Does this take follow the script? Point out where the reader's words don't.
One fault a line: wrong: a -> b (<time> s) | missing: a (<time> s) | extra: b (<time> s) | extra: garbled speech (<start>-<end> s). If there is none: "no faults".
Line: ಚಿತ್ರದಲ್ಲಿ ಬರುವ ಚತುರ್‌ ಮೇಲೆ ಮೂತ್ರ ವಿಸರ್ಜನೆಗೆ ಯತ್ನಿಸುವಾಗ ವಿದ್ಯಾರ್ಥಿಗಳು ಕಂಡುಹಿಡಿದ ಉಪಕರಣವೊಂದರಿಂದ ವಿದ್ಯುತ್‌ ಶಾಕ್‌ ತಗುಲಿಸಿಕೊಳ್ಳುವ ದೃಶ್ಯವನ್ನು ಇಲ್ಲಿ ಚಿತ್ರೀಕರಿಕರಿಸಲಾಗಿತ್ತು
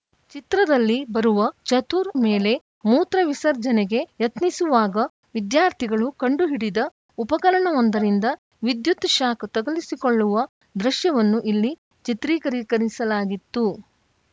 no faults